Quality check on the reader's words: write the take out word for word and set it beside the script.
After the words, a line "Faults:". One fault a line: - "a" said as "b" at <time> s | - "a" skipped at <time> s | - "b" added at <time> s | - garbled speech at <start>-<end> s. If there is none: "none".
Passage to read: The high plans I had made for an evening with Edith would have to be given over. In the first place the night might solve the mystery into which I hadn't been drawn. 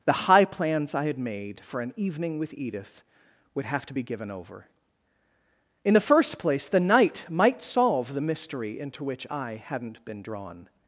The high plans I had made for an evening with Edith would have to be given over. In the first place the night might solve the mystery into which I hadn't been drawn.
Faults:
none